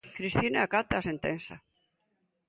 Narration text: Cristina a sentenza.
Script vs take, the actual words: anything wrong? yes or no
yes